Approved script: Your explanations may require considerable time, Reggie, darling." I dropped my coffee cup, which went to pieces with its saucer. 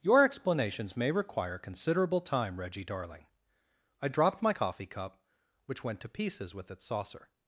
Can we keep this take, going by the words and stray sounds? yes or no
yes